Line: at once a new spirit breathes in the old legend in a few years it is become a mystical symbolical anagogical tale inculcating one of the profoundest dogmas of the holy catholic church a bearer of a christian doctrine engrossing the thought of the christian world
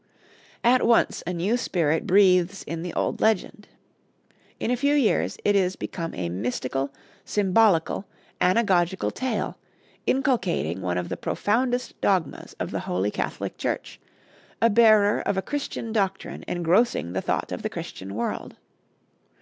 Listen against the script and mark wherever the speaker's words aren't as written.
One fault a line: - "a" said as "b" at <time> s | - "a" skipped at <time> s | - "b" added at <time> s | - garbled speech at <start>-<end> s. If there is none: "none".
none